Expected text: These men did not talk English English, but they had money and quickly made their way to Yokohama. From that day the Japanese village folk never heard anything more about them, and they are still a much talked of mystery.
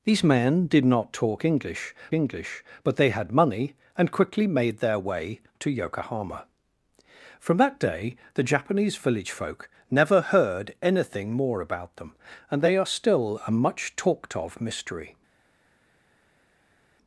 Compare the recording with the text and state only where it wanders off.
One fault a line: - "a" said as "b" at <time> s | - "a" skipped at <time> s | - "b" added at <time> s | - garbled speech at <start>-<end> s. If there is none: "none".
none